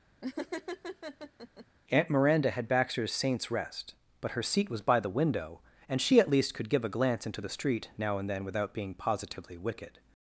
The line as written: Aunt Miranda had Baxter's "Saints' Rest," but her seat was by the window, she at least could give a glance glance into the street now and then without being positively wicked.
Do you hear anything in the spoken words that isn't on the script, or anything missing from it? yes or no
yes